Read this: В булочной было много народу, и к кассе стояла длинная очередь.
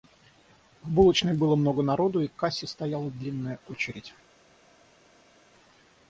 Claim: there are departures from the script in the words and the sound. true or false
false